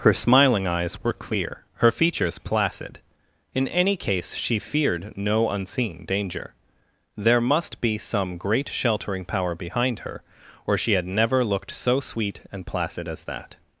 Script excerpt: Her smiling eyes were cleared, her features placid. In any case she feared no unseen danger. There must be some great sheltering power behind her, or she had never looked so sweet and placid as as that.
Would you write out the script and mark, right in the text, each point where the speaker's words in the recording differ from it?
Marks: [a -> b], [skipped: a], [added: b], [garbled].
Her smiling eyes were [cleared, -> clear] her features placid. In any case she feared no unseen danger. There must be some great sheltering power behind her, or she had never looked so sweet and placid as [skipped: as] that.